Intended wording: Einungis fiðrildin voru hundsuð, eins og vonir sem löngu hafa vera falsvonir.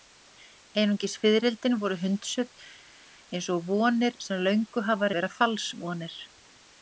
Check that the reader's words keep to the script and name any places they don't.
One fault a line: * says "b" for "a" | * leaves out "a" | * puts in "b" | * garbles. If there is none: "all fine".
all fine